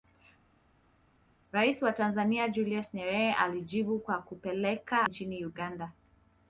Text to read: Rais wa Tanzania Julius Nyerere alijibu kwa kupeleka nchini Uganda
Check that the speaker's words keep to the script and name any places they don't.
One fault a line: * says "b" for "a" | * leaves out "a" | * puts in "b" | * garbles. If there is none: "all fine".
all fine